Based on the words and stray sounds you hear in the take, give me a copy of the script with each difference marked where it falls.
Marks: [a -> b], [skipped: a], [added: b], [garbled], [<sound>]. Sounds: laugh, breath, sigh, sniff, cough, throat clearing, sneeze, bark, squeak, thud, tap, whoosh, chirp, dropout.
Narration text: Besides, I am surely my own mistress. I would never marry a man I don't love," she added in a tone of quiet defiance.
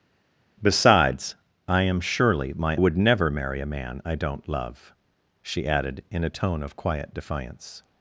Besides, I am surely my [skipped: own mistress. I] would never marry a man I don't love," she added in a tone of quiet defiance.